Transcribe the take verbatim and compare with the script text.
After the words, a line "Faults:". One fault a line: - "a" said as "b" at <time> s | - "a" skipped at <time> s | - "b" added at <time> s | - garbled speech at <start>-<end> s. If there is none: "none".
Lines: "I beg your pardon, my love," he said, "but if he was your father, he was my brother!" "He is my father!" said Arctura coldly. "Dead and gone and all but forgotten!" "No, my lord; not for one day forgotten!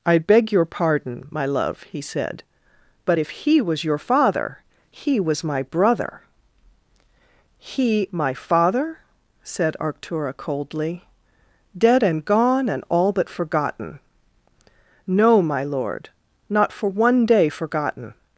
"I beg your pardon, my love," he said, "but if he was your father, he was my brother!" "He my father!" said Arctura coldly. "Dead and gone and all but forgotten!" "No, my lord; not for one day forgotten!
Faults:
- "is" skipped at 8.1 s